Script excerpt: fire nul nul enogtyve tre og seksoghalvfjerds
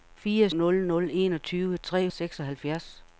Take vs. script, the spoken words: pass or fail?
pass